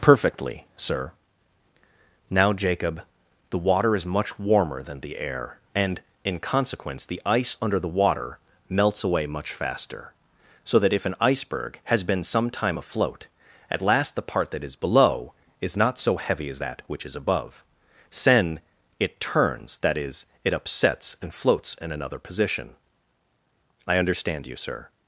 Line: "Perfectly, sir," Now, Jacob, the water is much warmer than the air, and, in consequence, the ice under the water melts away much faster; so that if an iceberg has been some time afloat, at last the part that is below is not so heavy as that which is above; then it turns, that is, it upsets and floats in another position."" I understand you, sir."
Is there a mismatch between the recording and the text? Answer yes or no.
yes